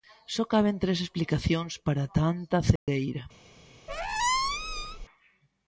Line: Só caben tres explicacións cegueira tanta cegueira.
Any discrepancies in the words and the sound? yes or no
yes